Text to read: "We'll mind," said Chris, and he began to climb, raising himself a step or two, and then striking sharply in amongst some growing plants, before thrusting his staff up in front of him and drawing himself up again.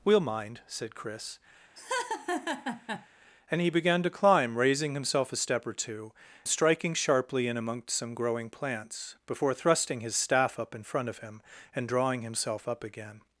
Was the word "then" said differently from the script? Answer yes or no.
yes